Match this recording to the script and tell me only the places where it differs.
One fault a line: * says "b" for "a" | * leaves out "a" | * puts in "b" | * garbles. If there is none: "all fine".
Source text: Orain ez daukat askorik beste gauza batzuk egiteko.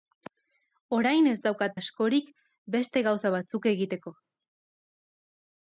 all fine